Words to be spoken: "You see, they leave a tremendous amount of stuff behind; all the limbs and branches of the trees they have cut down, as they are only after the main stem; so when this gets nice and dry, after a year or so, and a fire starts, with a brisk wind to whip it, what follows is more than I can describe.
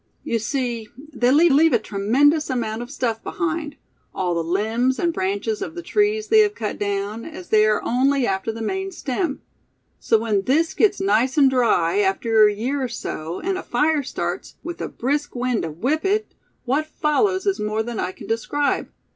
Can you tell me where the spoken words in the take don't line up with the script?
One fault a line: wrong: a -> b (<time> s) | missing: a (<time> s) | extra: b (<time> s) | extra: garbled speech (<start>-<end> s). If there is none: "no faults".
extra: leave (1.5 s)